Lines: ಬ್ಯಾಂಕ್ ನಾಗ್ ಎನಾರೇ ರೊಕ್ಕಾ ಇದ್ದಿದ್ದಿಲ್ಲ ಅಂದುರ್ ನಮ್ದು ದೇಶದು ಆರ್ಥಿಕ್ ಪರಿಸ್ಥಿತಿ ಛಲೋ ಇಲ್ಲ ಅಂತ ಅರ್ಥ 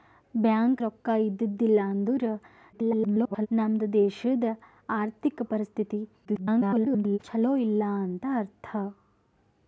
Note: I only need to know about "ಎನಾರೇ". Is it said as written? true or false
false